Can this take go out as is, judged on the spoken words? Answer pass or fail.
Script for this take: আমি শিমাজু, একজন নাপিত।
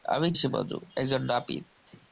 pass